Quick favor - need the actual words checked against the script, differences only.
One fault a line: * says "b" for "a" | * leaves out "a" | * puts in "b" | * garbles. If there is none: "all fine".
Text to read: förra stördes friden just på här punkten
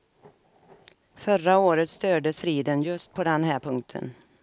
* puts in "året"
* puts in "den"